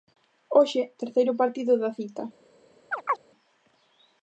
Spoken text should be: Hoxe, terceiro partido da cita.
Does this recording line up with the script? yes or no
yes